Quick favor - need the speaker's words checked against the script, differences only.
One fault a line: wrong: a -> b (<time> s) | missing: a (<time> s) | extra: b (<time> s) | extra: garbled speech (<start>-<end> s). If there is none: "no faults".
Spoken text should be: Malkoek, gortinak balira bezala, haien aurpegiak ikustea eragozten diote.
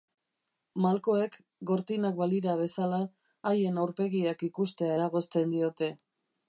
no faults